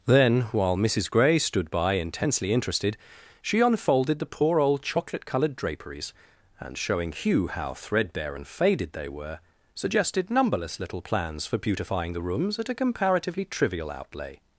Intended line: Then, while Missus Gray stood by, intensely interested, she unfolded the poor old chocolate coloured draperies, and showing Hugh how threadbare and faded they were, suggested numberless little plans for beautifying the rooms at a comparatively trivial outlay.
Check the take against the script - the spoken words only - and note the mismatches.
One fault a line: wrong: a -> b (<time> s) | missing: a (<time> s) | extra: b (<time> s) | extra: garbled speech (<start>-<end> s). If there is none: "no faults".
no faults